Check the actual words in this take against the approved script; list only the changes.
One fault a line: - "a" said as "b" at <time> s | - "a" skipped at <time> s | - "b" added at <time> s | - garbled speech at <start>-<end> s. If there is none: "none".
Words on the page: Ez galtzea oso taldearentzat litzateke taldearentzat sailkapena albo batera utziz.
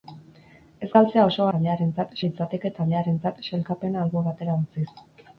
none